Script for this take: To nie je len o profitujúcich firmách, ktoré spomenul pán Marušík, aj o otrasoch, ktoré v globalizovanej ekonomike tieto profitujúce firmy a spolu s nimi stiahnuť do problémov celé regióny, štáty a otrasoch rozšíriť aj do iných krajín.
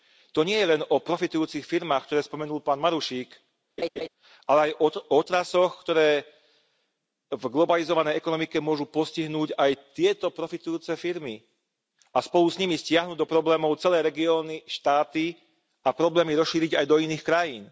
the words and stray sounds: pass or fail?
fail